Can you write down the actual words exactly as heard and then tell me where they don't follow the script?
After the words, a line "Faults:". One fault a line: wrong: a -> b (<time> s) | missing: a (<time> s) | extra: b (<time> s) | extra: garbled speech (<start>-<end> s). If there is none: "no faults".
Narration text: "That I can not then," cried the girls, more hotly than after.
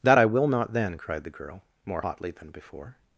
"That I will not then," cried the girl, more hotly than before.
Faults:
wrong: can -> will (0.2 s)
wrong: girls -> girl (1.3 s)
wrong: after -> before (2.5 s)